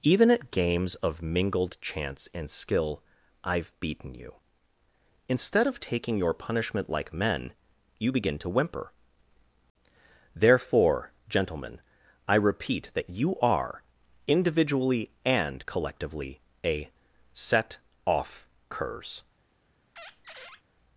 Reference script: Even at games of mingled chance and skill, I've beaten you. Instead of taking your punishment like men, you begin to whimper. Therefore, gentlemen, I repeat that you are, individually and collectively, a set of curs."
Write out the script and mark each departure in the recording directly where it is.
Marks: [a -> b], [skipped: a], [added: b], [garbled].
Even at games of mingled chance and skill, I've beaten you. Instead of taking your punishment like men, you begin to whimper. Therefore, gentlemen, I repeat that you are, individually and collectively, a set [of -> off] curs."